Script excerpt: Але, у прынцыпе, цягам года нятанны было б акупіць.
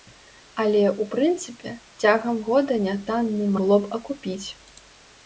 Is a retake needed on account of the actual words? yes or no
no